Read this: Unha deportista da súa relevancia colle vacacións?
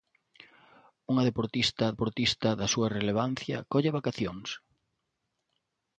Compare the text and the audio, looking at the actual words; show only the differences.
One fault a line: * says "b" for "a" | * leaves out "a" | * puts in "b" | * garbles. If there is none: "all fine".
* puts in "deportista"